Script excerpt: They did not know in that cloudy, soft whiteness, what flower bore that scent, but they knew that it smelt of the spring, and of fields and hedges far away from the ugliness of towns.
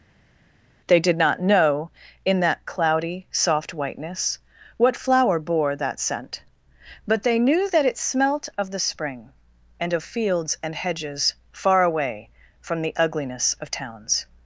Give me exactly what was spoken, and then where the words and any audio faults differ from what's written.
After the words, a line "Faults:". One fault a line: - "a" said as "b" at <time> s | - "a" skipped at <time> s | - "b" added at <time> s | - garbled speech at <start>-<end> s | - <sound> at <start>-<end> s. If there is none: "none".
They did not know in that cloudy, soft whiteness, what flower bore that scent, but they knew that it smelt of the spring, and of fields and hedges far away from the ugliness of towns.
Faults:
none